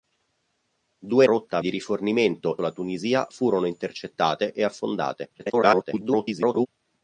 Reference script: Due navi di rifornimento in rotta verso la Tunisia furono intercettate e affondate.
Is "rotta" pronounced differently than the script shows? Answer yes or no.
yes